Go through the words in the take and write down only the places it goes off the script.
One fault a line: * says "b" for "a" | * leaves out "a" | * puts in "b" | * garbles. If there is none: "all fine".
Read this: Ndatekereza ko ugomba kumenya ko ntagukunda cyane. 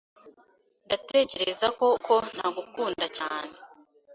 * leaves out "ugomba kumenya"